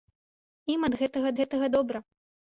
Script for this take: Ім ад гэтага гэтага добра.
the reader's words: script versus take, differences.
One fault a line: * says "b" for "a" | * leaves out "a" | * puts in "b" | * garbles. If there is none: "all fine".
all fine